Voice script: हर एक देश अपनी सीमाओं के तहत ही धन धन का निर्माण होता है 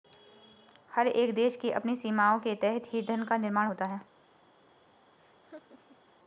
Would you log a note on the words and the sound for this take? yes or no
yes